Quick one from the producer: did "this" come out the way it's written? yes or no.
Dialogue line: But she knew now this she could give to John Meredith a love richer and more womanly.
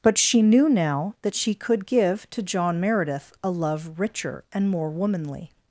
no